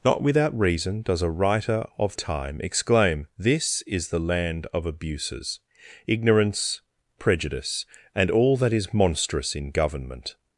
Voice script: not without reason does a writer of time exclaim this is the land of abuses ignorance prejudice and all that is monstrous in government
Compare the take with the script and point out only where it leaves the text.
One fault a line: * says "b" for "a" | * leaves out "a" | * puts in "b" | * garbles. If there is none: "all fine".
all fine